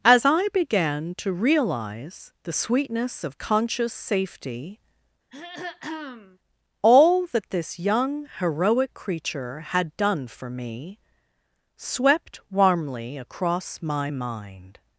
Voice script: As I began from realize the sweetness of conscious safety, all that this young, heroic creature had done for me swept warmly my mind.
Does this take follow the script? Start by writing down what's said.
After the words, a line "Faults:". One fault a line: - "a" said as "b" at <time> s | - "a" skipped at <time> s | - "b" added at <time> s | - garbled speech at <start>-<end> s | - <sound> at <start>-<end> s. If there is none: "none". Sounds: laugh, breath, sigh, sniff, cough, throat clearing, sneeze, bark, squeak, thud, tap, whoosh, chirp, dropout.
As I began to realize the sweetness of conscious safety, all that this young, heroic creature had done for me swept warmly across my mind.
Faults:
- "from" said as "to" at 1.2 s
- throat clearing at 5.3-6.4 s
- "across" added at 13.2 s